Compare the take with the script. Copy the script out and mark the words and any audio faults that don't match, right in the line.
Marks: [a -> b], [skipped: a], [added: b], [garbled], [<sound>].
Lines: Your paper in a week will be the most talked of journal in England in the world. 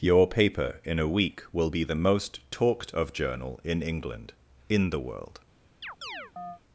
Your paper in a week will be the most talked of journal in England in the world. [chirp]